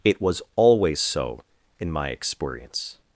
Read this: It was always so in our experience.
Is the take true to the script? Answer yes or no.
no